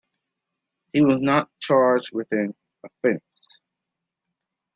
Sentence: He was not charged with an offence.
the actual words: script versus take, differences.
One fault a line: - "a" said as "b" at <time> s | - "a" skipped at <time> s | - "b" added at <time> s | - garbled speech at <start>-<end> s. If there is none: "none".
none